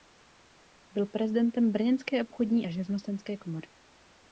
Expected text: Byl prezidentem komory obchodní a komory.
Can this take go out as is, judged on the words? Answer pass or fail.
fail